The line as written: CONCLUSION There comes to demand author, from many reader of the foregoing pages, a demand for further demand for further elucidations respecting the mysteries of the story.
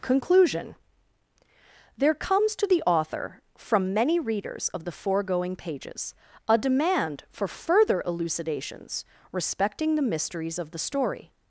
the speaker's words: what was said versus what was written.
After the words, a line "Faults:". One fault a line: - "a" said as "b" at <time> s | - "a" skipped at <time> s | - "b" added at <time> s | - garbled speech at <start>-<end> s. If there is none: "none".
CONCLUSION There comes to the author, from many readers of the foregoing pages, a demand for further elucidations respecting the mysteries of the story.
Faults:
- "demand" said as "the" at 2.6 s
- "reader" said as "readers" at 4.2 s
- "demand for further" skipped at 8.0 s